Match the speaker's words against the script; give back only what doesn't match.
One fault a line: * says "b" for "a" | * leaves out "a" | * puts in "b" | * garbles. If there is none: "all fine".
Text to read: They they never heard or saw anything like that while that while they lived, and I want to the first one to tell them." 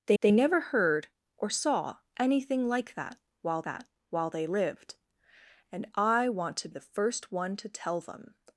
all fine